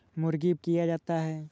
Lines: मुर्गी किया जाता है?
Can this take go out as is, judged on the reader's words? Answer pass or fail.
pass